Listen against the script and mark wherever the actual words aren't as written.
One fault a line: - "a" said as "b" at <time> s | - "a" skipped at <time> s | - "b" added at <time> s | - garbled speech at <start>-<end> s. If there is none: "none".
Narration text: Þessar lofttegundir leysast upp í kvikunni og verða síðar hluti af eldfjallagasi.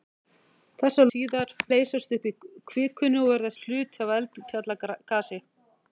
- "lofttegundir" said as "síðar" at 1.1 s
- "síðar" skipped at 3.5 s